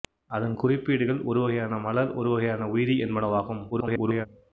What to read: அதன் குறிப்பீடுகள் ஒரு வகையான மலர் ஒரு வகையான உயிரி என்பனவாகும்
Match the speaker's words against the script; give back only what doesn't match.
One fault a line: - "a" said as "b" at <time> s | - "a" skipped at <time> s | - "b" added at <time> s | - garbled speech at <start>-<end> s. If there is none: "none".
- garbled speech at 3.7-4.3 s